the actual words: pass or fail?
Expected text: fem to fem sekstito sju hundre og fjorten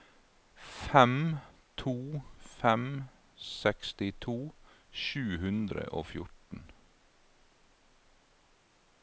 pass